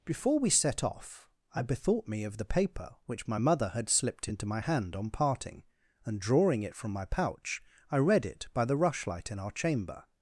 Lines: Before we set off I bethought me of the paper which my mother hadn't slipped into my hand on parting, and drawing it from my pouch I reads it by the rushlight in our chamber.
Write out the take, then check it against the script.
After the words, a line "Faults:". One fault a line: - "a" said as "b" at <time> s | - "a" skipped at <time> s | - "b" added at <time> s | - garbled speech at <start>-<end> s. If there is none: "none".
Before we set off I bethought me of the paper which my mother had slipped into my hand on parting, and drawing it from my pouch I read it by the rushlight in our chamber.
Faults:
- "hadn't" said as "had" at 3.7 s
- "reads" said as "read" at 8.0 s